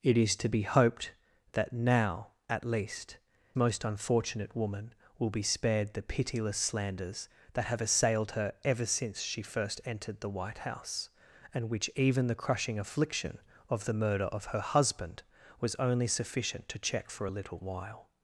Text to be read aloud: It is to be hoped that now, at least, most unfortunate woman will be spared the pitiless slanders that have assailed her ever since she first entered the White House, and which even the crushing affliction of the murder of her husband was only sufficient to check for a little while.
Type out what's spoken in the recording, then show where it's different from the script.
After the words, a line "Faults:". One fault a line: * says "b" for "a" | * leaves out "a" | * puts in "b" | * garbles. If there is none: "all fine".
It is to be hoped that now, at least, most unfortunate woman will be spared the pitiless slanders that have assailed her ever since she first entered the White House, and which even the crushing affliction of the murder of her husband was only sufficient to check for a little while.
Faults:
all fine